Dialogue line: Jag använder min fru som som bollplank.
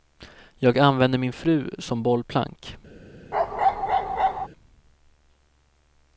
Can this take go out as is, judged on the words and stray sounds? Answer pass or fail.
fail